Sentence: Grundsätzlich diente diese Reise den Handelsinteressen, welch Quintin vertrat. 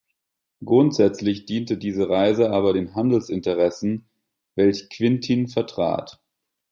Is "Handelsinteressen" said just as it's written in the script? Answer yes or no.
yes